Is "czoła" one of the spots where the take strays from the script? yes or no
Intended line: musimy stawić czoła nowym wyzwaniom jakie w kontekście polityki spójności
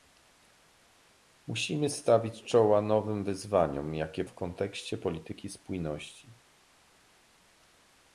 no